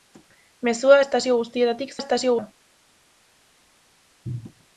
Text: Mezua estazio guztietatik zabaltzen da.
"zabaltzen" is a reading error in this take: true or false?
true